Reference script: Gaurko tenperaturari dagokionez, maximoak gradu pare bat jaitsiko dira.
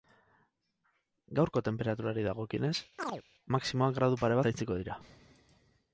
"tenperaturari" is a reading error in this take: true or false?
false